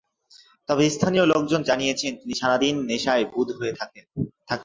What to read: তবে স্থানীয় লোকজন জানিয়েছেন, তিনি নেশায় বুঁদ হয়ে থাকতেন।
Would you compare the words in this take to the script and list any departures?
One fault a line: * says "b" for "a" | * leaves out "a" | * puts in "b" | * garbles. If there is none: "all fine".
* puts in "সারা দিন"